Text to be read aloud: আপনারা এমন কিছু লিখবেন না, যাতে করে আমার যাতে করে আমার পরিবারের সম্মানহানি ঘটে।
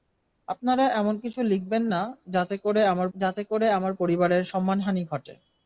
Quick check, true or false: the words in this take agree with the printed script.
true